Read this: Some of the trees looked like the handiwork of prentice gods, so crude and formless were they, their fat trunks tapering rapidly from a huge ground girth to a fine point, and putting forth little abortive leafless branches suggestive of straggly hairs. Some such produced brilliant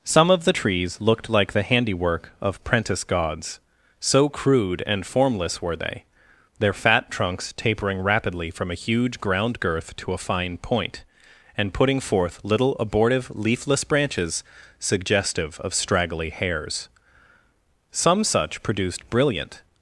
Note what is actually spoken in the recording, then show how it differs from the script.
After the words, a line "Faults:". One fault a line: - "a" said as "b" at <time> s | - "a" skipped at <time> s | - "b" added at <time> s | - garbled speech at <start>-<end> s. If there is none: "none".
Some of the trees looked like the handiwork of prentice gods, so crude and formless were they, their fat trunks tapering rapidly from a huge ground girth to a fine point, and putting forth little abortive leafless branches suggestive of straggly hairs. Some such produced brilliant
Faults:
none